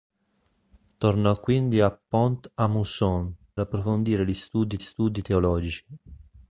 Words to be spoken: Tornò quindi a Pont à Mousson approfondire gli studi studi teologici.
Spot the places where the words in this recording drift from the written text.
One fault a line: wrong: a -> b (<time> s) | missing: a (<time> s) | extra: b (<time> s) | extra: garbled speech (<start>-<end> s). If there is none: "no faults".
no faults